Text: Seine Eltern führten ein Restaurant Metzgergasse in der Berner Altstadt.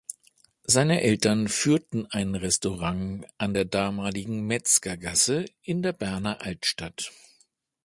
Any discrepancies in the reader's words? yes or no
yes